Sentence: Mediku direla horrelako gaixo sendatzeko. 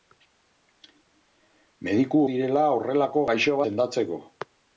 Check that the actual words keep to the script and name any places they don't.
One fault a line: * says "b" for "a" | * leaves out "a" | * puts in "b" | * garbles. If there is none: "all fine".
all fine